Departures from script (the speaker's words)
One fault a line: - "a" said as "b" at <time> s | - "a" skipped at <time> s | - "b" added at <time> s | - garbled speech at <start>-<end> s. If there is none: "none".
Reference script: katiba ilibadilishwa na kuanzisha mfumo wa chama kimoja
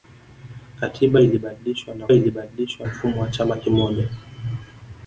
- "kuanzisha" said as "ilibadilishwa" at 2.1 s